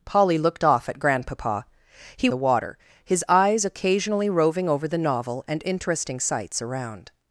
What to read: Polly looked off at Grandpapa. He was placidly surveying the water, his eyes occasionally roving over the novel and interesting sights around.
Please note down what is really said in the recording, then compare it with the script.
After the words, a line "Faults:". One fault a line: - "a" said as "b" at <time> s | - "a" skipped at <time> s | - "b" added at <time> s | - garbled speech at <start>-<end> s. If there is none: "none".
Polly looked off at Grandpapa. He the water, his eyes occasionally roving over the novel and interesting sights around.
Faults:
- "was placidly surveying" skipped at 2.3 s